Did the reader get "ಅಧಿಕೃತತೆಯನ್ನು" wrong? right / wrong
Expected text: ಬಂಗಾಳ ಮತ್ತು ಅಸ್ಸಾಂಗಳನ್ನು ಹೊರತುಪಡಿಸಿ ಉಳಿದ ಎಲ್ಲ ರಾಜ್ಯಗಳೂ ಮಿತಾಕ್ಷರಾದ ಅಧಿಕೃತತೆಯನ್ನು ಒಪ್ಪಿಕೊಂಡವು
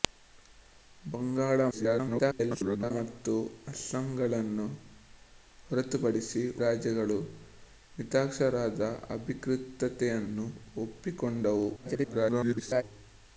right